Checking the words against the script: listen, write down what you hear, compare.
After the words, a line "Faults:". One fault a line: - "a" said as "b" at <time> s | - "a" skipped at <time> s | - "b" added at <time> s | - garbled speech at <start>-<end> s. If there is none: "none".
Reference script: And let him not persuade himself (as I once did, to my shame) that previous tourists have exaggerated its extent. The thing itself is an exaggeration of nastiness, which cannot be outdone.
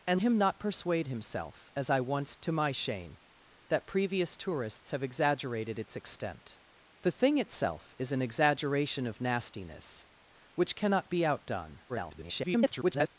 And him not persuade himself (as I once to my shame) that previous tourists have exaggerated its extent. The thing itself is an exaggeration of nastiness, which cannot be outdone. [garbled]
Faults:
- "let" skipped at 0.2 s
- "did" skipped at 2.4 s
- garbled speech at 11.9-13.1 s